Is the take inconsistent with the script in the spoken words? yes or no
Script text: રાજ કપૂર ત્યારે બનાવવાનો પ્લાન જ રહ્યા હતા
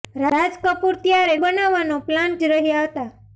no